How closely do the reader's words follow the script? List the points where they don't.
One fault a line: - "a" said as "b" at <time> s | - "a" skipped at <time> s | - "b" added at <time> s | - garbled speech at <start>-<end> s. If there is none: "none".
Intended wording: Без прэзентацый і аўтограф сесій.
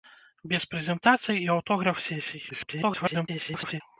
- garbled speech at 2.5-3.8 s